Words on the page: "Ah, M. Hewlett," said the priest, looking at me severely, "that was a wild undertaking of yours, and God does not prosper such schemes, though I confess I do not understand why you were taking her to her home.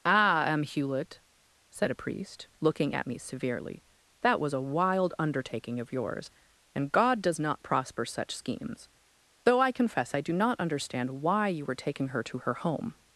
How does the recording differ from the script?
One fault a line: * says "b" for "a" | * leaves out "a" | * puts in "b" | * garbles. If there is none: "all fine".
* says "a" for "the"